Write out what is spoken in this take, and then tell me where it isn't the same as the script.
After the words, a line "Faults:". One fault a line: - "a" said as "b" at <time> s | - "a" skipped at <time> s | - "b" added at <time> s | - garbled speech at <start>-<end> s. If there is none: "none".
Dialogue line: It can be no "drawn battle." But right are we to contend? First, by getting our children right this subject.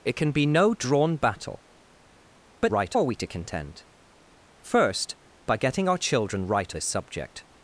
It can be no "drawn battle." But right are we to contend? First, by getting our children right this subject.
Faults:
none